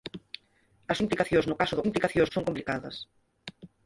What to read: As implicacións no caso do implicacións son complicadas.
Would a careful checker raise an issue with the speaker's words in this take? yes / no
no